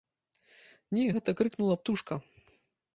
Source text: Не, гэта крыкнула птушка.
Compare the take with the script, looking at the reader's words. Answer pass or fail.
pass